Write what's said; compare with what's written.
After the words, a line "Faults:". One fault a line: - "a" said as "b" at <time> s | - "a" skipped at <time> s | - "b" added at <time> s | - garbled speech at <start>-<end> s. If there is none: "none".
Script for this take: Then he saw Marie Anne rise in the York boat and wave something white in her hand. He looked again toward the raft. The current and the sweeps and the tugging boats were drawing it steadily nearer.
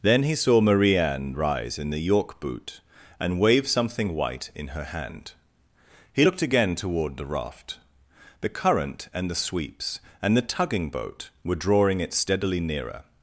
Then he saw Marie Anne rise in the York boot and wave something white in her hand. He looked again toward the raft. The current and the sweeps and the tugging boat were drawing it steadily nearer.
Faults:
- "boat" said as "boot" at 2.4 s
- "boats" said as "boat" at 10.9 s